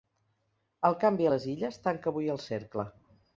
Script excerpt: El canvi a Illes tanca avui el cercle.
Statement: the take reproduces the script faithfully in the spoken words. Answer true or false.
false